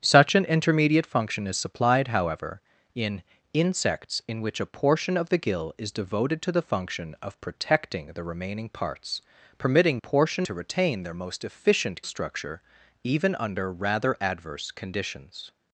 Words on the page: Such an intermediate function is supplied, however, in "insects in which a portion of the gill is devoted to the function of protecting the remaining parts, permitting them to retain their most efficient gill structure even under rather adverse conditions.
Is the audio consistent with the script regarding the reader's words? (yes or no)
no